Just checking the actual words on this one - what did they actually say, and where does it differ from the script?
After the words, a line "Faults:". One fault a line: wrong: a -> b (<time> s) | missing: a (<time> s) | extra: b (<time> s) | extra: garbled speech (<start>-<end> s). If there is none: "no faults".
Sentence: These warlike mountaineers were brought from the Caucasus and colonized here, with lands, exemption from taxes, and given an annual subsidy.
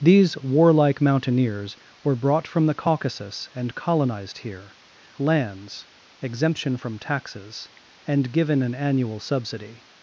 These warlike mountaineers were brought from the Caucasus and colonized here, lands, exemption from taxes, and given an annual subsidy.
Faults:
missing: with (4.8 s)